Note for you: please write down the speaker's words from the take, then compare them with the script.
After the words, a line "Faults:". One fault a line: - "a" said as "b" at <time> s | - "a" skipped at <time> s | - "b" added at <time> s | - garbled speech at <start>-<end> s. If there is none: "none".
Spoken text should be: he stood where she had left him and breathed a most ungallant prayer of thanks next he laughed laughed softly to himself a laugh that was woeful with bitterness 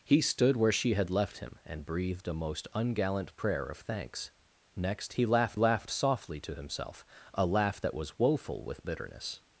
he stood where she had left him and breathed a most ungallant prayer of thanks next he laughed laughed softly to himself a laugh that was woeful with bitterness
Faults:
none